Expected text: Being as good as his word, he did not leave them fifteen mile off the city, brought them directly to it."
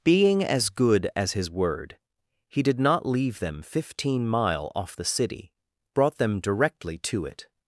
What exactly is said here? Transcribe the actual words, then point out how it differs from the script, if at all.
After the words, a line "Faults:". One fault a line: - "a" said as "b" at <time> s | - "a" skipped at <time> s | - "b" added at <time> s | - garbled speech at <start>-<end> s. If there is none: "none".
Being as good as his word, he did not leave them fifteen mile off the city, brought them directly to it."
Faults:
none